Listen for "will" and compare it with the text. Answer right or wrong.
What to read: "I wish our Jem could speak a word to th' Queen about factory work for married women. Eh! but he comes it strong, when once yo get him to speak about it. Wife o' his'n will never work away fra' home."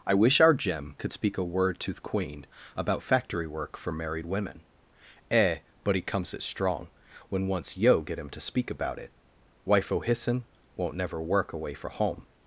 wrong